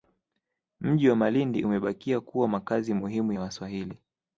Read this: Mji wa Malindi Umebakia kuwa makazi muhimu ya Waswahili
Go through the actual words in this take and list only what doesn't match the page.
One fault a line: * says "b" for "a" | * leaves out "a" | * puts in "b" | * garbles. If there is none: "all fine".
all fine